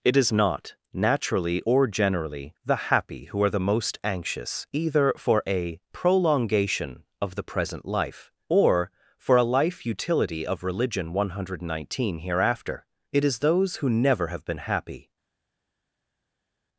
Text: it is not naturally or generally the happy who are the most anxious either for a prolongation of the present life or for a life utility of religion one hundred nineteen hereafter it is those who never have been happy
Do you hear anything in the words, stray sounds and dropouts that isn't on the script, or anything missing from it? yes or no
no